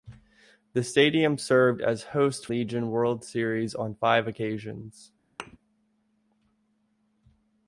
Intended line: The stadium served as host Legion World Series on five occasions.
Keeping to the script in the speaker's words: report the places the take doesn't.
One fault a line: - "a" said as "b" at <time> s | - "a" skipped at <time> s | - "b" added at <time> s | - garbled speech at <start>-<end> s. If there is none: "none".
none